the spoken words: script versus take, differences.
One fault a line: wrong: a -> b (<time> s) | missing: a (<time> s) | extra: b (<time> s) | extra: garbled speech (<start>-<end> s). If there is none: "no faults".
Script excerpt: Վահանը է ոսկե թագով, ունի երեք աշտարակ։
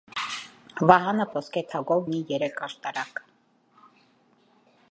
no faults